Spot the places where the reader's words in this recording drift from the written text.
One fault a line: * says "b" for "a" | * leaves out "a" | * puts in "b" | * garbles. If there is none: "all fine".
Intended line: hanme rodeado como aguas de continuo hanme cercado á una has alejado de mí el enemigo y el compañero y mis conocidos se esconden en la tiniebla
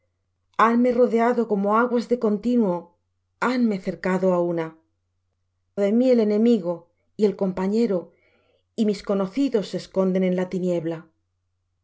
* leaves out "has alejado"